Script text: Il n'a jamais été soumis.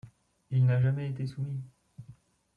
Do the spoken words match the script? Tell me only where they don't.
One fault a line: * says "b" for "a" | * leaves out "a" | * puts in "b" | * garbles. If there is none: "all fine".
all fine